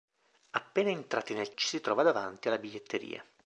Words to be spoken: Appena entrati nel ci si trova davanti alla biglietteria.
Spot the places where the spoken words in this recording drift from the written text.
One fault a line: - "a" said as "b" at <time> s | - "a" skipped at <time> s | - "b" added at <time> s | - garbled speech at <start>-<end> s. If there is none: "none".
none